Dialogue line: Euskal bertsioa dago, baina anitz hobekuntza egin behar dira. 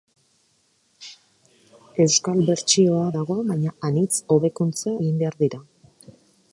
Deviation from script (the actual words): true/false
false